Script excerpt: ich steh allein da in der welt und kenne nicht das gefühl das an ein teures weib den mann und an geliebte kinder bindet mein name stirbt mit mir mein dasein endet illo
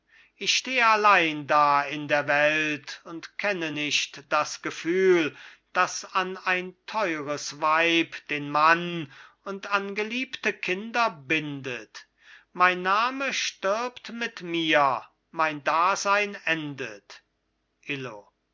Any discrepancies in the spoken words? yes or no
no